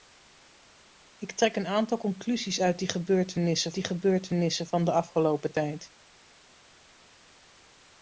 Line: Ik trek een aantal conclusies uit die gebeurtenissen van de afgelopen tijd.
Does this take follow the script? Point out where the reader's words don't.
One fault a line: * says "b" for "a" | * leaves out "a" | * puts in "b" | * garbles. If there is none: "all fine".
* puts in "die gebeurtenissen"